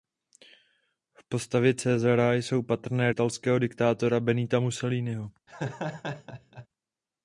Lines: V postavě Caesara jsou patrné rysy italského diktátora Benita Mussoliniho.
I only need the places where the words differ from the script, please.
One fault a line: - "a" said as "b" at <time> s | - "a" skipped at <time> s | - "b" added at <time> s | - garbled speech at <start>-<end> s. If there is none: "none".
- "rysy" skipped at 3.1 s